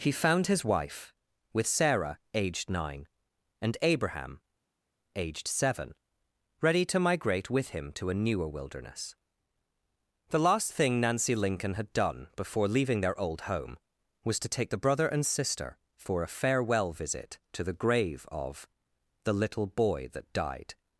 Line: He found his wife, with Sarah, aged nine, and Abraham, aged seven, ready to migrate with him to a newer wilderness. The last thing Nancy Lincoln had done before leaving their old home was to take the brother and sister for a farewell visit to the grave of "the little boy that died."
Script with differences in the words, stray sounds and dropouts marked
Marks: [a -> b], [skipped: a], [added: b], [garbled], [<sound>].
He found his wife, with Sarah, aged nine, and Abraham, aged seven, ready to migrate with him to a newer wilderness. The last thing Nancy Lincoln had done before leaving their old home was to take the brother and sister for a farewell visit to the grave of "the little boy that died."